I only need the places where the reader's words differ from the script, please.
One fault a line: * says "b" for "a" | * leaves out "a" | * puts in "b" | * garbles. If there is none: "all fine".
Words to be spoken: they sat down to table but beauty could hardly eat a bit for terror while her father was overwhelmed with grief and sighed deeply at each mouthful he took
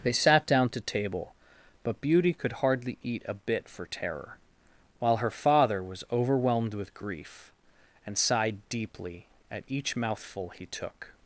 all fine